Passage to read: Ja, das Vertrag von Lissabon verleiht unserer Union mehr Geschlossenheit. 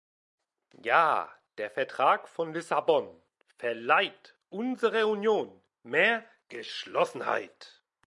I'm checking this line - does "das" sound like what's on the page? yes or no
no